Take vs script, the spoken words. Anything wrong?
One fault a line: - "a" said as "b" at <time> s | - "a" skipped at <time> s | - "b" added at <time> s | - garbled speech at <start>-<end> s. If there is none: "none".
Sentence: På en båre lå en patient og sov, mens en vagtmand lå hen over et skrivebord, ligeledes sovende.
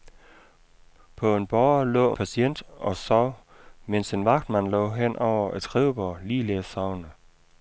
- "en" skipped at 2.2 s